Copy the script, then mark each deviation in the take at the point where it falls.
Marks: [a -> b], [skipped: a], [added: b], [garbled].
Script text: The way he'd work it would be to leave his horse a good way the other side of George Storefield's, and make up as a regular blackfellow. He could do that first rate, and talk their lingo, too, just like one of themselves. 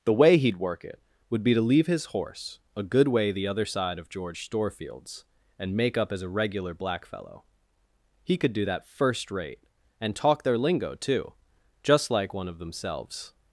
The way he'd work it would be to leave his horse a good way the other side of George Storefield's, and make up as a regular blackfellow. He could do that first rate, and talk their lingo, too, just like one of themselves.